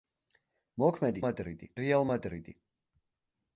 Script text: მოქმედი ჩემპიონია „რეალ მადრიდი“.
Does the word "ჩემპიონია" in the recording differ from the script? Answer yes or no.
yes